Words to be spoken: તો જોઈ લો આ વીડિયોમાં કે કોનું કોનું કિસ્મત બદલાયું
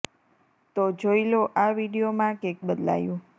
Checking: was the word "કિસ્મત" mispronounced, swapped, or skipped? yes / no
yes